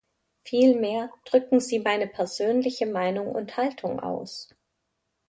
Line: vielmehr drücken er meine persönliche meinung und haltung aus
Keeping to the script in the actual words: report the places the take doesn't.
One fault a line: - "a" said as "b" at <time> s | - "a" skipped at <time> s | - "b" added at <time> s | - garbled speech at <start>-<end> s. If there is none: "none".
- "er" said as "sie" at 1.6 s